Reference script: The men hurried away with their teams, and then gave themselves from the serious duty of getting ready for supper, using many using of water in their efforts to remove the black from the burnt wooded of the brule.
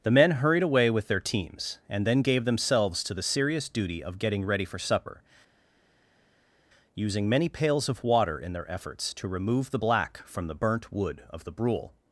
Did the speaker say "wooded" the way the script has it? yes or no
no